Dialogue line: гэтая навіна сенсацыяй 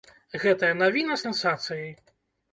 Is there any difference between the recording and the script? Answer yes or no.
no